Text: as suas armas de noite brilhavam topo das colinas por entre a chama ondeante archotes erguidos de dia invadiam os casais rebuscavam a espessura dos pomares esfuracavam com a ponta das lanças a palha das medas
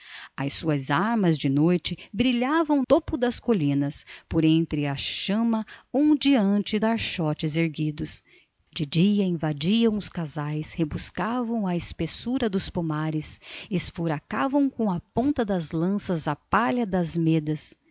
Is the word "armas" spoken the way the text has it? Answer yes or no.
yes